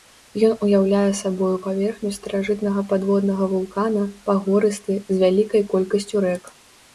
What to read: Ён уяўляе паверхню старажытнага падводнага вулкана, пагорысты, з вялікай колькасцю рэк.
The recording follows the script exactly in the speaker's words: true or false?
false